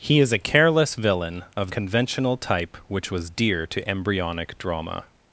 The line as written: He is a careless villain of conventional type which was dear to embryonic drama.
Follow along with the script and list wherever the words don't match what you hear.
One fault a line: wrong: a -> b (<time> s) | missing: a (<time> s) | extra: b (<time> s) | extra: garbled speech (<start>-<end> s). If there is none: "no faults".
no faults